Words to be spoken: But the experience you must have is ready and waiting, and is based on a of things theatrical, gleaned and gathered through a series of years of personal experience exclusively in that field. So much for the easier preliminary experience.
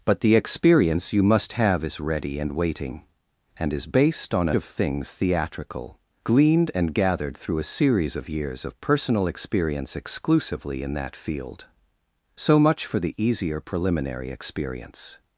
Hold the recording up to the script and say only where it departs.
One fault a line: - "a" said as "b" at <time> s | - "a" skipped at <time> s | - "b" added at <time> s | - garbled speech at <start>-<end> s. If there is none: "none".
none